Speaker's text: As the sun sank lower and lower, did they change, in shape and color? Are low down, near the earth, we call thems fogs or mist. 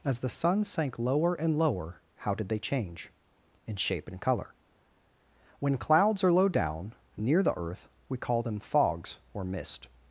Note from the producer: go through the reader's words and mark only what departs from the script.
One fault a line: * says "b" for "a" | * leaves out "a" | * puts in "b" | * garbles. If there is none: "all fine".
* puts in "how"
* puts in "When clouds"
* says "them" for "thems"